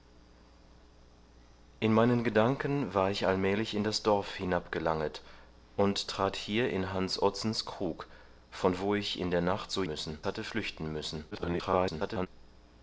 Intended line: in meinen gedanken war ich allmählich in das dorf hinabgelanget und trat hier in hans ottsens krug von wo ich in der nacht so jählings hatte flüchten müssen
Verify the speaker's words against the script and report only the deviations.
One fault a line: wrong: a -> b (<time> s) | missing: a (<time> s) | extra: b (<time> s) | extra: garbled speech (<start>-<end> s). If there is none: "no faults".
wrong: jählings -> müssen (9.9 s)
extra: garbled speech (11.3-12.3 s)